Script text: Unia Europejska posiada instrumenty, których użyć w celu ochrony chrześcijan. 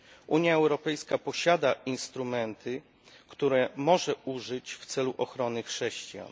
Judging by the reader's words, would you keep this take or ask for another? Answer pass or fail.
fail